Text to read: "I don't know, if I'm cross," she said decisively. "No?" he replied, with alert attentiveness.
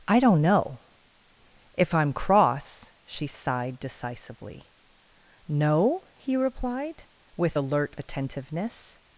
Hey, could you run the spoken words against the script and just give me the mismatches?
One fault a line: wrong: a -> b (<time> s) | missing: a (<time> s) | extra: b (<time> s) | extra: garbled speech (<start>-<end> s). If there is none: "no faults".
wrong: said -> sighed (3.3 s)